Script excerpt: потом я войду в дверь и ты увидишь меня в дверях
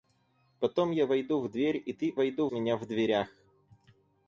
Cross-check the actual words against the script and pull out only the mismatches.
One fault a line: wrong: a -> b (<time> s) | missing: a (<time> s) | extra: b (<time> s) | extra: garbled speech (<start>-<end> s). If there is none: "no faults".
wrong: увидишь -> войду (2.1 s)